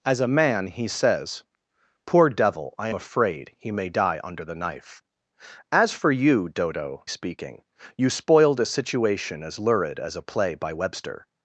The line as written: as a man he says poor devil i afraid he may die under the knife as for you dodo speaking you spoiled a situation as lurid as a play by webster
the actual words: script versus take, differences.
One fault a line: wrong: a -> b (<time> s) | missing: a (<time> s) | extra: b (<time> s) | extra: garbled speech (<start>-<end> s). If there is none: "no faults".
no faults